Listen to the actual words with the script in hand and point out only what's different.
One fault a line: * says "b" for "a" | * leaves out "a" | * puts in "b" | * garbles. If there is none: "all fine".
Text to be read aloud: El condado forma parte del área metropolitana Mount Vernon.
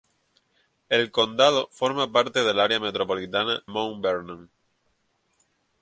all fine